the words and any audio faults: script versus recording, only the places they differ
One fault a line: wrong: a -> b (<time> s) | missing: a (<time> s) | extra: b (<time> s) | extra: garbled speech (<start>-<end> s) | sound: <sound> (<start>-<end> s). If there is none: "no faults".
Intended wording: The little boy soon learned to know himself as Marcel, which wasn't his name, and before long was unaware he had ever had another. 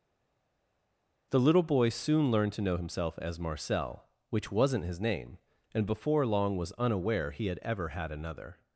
no faults